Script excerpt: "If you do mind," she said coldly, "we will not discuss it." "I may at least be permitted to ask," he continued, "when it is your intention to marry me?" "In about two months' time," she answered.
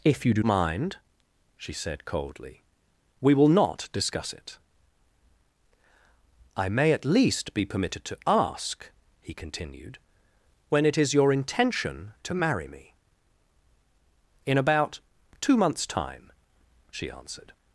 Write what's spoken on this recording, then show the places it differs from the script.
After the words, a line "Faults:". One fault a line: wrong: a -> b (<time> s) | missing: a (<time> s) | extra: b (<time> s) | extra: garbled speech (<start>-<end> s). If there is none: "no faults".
"If you do mind," she said coldly, "we will not discuss it." "I may at least be permitted to ask," he continued, "when it is your intention to marry me?" "In about two months' time," she answered.
Faults:
no faults